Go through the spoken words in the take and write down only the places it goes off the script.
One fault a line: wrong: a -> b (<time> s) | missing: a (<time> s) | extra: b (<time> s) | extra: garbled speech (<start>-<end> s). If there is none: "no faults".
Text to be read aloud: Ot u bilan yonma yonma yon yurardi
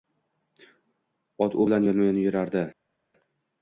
missing: yonma (2.1 s)